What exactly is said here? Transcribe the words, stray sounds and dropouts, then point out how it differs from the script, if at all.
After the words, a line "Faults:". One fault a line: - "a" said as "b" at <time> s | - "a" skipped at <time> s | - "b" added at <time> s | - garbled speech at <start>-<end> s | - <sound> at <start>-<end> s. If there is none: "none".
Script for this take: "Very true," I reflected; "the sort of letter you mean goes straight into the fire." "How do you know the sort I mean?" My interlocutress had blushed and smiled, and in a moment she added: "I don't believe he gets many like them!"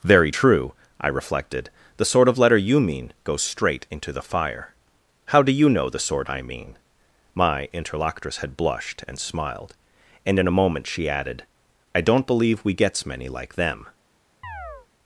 "Very true," I reflected; "the sort of letter you mean goes straight into the fire." "How do you know the sort I mean?" My interlocutress had blushed and smiled, and in a moment she added: "I don't believe we gets many like them!"
Faults:
- "he" said as "we" at 12.6 s
- chirp at 14.4-14.9 s